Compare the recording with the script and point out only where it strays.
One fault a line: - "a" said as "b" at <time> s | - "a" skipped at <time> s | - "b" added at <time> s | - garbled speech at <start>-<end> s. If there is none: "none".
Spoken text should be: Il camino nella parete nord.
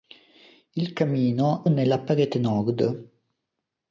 none